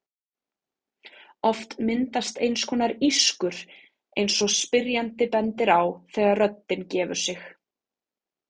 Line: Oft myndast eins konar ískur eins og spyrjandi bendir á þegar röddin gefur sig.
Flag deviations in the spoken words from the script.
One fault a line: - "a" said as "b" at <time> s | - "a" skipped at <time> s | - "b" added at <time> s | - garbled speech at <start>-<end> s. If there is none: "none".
none